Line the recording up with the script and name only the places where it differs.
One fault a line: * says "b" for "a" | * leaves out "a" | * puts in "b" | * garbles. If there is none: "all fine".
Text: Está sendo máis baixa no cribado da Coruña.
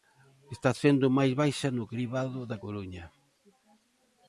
all fine